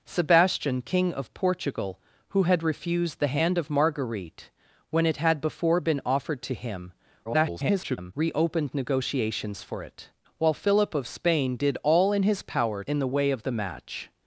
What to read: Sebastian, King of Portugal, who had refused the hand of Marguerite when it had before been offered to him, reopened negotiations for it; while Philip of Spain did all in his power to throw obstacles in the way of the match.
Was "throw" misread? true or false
true